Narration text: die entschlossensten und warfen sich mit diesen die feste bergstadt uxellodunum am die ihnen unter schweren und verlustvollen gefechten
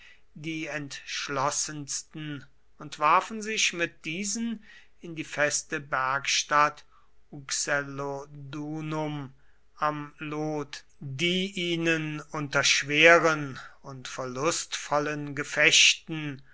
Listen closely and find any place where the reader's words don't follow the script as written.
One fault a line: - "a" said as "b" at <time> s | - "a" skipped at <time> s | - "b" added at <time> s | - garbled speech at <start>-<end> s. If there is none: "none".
- "in" added at 5.0 s
- "lot" added at 10.2 s